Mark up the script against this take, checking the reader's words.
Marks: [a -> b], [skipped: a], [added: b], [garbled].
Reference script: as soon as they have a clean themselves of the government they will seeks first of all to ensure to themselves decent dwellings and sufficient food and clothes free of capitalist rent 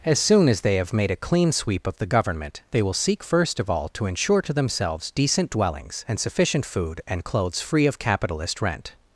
as soon as they have [added: made] a clean [themselves -> sweep] of the government they will [seeks -> seek] first of all to ensure to themselves decent dwellings and sufficient food and clothes free of capitalist rent